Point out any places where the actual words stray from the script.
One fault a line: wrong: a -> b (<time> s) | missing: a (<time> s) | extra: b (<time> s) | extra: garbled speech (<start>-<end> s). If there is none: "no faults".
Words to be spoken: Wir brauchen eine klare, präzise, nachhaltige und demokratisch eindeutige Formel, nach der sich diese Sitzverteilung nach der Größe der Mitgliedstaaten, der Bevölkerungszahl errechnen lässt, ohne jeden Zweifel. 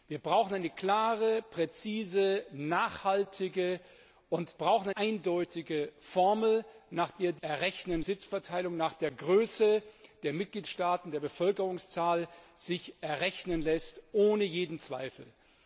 wrong: demokratisch -> brauchen (4.5 s)
wrong: diese -> errechnen (7.4 s)